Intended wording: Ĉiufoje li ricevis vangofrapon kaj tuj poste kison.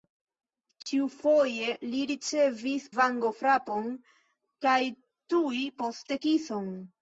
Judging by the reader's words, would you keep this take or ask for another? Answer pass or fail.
pass